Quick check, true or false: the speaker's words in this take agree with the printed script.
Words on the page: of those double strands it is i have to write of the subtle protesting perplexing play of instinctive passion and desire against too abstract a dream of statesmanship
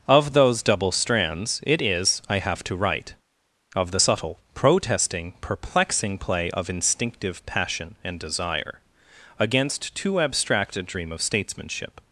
true